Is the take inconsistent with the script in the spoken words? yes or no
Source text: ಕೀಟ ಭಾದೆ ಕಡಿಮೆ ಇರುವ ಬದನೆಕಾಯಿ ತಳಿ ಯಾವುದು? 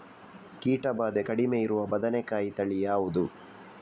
no